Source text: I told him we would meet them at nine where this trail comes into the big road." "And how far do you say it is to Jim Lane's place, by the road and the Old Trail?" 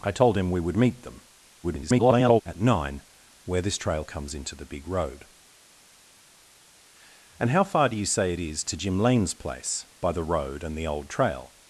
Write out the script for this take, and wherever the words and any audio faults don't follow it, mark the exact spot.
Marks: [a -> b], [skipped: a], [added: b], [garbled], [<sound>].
I told him we would meet them [garbled] at nine where this trail comes into the big road." "And how far do you say it is to Jim Lane's place, by the road and the Old Trail?"